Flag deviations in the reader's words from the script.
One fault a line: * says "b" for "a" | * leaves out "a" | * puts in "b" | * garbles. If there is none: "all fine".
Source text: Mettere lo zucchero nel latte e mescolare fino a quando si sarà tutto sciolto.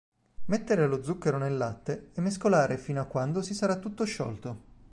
all fine